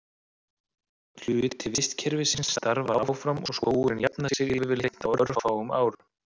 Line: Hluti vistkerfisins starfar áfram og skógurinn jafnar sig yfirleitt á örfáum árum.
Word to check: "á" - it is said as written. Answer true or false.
true